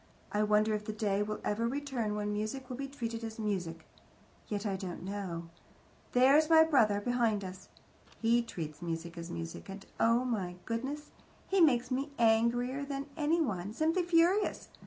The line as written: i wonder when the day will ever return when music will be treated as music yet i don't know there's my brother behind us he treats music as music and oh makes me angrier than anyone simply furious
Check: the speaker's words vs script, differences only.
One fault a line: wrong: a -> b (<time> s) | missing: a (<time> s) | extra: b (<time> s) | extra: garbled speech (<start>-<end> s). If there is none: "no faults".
wrong: when -> if (0.7 s)
extra: my goodness he (10.2 s)